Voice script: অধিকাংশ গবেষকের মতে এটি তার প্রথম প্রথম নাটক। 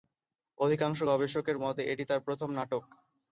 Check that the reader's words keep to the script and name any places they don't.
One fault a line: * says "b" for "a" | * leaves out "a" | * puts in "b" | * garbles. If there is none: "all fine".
* leaves out "প্রথম"